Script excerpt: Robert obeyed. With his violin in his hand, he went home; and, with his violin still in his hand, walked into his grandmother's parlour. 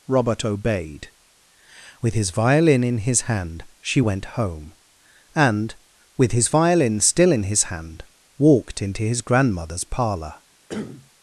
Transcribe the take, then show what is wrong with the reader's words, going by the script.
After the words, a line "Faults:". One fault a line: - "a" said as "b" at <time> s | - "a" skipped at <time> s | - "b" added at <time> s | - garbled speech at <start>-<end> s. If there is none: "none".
Robert obeyed. With his violin in his hand, she went home; and, with his violin still in his hand, walked into his grandmother's parlour.
Faults:
- "he" said as "she" at 3.8 s